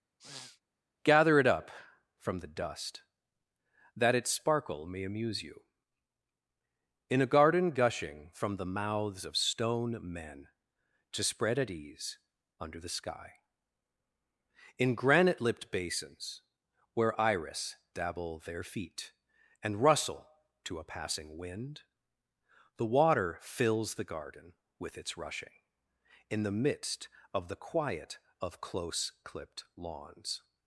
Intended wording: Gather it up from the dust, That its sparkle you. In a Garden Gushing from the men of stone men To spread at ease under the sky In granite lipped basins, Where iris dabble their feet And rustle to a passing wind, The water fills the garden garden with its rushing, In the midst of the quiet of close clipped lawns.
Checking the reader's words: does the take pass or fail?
fail